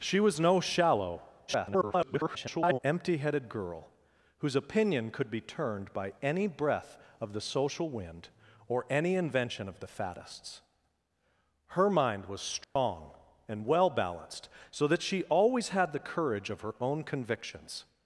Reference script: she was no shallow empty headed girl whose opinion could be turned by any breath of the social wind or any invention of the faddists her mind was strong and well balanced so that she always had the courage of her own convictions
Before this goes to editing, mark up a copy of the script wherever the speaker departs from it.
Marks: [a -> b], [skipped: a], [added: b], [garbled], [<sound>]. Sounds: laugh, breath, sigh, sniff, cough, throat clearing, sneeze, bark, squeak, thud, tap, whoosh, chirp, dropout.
she was no shallow [garbled] empty headed girl whose opinion could be turned by any breath of the social wind or any invention of the faddists her mind was strong [dropout] and well balanced so that she always had the courage of her own convictions